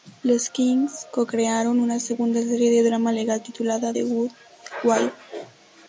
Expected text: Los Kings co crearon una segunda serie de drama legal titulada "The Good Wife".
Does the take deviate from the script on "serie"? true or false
false